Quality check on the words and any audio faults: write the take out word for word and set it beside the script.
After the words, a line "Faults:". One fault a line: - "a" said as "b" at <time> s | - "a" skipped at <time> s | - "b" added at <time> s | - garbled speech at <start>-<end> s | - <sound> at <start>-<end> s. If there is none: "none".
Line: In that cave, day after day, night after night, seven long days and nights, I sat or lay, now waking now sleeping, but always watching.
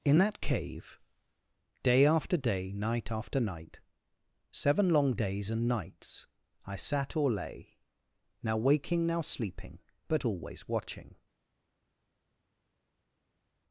In that cave, day after day, night after night, seven long days and nights, I sat or lay, now waking now sleeping, but always watching.
Faults:
none